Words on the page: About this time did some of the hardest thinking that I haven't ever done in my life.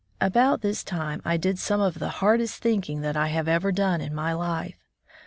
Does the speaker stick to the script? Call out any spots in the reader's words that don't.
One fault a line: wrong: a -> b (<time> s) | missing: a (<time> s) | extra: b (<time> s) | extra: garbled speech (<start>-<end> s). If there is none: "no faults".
extra: I (1.2 s)
wrong: haven't -> have (3.3 s)